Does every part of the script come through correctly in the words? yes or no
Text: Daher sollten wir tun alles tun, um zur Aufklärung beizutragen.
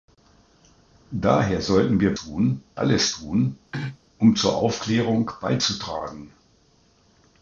yes